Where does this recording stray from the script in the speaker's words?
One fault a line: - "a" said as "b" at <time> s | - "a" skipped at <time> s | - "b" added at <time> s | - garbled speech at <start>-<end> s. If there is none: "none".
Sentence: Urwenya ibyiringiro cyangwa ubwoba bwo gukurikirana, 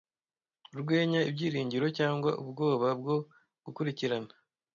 none